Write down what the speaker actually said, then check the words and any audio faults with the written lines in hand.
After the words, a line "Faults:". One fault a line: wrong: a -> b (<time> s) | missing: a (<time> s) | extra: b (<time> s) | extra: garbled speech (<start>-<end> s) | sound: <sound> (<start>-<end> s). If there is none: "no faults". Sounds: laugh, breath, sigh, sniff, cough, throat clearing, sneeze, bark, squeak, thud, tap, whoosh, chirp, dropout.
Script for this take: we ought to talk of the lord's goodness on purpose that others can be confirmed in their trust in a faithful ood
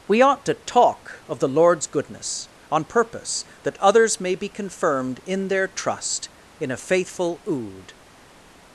we ought to talk of the lord's goodness on purpose that others may be confirmed in their trust in a faithful ood
Faults:
wrong: can -> may (4.2 s)